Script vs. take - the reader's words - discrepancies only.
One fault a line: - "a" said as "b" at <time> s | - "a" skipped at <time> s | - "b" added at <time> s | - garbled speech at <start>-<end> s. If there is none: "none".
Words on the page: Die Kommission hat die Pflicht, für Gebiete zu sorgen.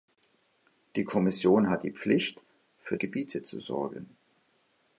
none